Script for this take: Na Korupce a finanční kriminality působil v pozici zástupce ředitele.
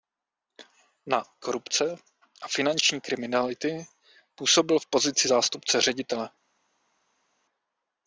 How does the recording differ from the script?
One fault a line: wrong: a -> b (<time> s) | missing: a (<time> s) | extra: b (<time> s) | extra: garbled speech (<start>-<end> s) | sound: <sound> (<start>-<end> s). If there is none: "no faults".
no faults